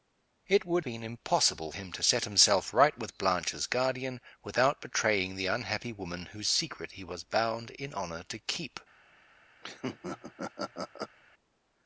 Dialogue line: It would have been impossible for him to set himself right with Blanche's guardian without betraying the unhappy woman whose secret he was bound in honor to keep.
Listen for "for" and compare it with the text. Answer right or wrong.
wrong